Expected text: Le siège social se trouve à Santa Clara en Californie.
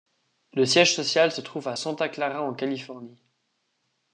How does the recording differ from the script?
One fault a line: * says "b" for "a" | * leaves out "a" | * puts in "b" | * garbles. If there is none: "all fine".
all fine